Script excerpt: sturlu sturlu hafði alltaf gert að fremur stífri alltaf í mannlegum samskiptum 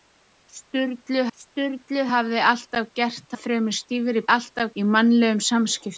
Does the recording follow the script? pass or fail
pass